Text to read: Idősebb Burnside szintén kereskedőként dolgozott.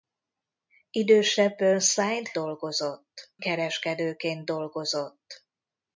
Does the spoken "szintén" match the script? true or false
false